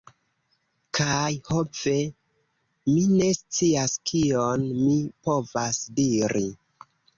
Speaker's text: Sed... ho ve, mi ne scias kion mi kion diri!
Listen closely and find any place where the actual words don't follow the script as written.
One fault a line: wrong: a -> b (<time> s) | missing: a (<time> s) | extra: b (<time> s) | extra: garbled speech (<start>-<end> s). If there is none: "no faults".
wrong: Sed -> Kaj (1.0 s)
wrong: kion -> povas (5.3 s)